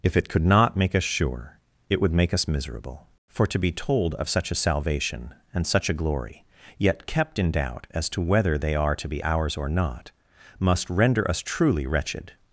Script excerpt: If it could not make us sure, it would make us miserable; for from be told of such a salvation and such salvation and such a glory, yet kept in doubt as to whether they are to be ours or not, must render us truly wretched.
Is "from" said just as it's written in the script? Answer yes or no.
no